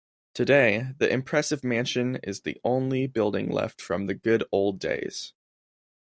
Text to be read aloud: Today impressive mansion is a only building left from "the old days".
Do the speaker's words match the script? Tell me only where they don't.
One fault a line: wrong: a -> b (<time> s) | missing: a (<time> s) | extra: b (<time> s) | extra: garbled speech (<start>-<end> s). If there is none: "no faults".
extra: the (1.0 s)
wrong: a -> the (2.4 s)
extra: good (4.2 s)